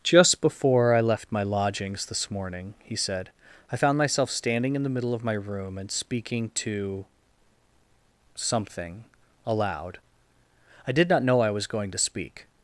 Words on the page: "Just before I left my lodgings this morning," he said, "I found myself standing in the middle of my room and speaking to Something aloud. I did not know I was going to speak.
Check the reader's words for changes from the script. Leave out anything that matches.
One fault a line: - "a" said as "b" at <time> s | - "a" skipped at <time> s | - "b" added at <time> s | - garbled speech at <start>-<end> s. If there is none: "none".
none